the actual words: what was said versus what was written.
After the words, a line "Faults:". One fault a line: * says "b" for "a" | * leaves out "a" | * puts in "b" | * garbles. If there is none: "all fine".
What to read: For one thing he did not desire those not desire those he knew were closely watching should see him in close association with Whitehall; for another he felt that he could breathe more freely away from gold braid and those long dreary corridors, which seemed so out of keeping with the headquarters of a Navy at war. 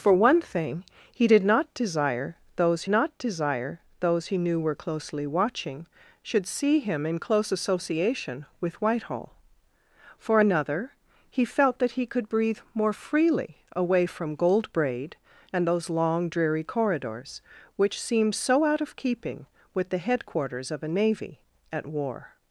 For one thing he did not desire those not desire those he knew were closely watching should see him in close association with Whitehall; for another he felt that he could breathe more freely away from gold braid and those long dreary corridors, which seemed so out of keeping with the headquarters of a Navy at war.
Faults:
all fine